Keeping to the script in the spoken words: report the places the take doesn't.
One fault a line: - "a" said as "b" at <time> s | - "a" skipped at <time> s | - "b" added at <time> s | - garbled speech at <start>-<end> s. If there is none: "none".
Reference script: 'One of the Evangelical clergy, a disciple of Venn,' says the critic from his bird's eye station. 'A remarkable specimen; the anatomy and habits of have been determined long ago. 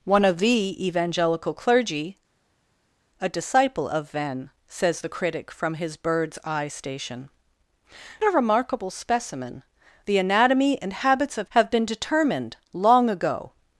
none